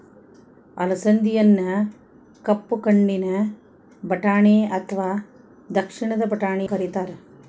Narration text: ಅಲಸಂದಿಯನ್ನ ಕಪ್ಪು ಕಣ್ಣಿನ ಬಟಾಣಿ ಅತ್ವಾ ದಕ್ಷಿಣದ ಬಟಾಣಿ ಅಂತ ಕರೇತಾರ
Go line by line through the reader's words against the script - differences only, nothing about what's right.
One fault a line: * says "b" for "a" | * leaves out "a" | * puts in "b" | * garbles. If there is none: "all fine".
* leaves out "ಅಂತ"